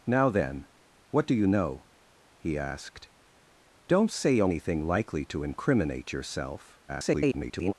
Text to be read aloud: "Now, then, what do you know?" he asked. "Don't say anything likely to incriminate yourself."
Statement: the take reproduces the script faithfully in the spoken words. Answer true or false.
false